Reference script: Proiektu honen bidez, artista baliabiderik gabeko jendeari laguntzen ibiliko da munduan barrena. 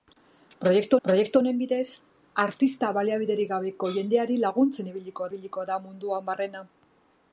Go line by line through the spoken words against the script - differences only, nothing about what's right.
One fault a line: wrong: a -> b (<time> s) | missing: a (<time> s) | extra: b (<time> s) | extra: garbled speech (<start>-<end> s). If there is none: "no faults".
extra: proiektu (1.0 s)
extra: ibiliko (5.3 s)